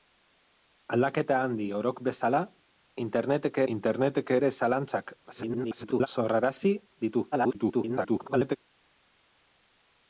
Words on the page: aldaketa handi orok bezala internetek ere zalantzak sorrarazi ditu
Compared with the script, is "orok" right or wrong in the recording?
right